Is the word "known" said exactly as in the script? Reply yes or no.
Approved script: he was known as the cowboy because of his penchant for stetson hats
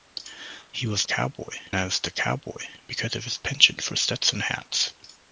no